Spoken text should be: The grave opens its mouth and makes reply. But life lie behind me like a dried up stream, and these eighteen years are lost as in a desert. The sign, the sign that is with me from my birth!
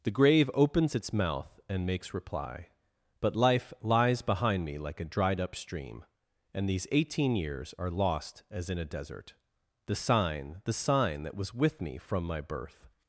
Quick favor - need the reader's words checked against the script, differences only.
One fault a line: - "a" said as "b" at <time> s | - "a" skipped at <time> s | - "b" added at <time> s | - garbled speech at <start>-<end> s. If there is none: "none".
- "lie" said as "lies" at 3.8 s
- "is" said as "was" at 11.4 s